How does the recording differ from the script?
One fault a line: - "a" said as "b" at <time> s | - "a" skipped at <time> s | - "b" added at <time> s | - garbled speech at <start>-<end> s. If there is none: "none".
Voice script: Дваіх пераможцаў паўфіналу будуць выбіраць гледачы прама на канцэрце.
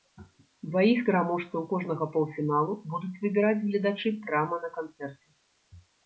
- "кожнага" added at 1.7 s